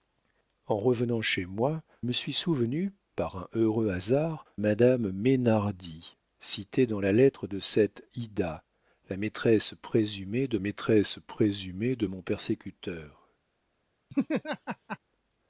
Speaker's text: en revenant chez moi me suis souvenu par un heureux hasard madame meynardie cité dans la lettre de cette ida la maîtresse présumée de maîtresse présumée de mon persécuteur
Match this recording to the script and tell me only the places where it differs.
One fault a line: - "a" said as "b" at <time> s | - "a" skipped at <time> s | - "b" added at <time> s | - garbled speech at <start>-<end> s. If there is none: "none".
none